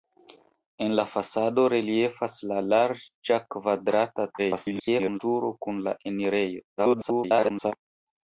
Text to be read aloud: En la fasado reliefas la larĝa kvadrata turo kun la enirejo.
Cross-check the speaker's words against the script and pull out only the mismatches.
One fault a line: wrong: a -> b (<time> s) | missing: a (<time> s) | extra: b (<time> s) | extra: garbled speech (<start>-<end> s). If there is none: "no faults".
extra: garbled speech (4.4-5.2 s)
extra: garbled speech (6.8-7.7 s)